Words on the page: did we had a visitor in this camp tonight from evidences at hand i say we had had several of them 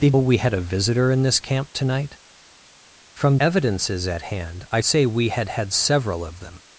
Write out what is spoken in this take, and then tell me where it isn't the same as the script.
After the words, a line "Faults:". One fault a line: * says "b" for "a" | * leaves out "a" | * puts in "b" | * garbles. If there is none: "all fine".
did we had a visitor in this camp tonight from evidences at hand i say we had had several of them
Faults:
all fine